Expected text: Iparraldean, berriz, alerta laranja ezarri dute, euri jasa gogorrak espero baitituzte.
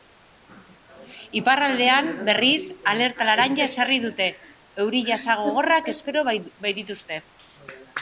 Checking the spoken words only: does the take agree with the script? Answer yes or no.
yes